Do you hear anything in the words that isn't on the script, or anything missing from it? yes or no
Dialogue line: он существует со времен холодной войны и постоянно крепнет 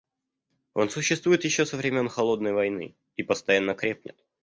yes